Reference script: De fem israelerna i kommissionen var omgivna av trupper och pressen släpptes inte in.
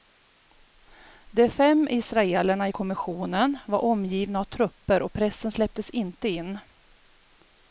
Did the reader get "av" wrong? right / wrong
right